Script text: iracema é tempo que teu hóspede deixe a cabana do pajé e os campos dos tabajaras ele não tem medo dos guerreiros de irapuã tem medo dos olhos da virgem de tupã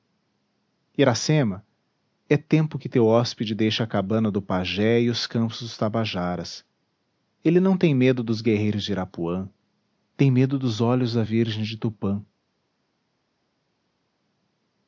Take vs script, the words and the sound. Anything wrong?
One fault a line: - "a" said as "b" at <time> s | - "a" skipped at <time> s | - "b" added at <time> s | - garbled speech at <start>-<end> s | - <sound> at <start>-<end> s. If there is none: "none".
none